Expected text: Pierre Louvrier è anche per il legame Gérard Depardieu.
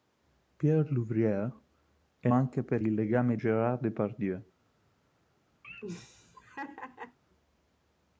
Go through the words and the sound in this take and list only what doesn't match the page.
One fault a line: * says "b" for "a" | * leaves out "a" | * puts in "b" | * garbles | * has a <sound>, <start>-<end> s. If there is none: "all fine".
* has a laugh, 5.6-7.2 s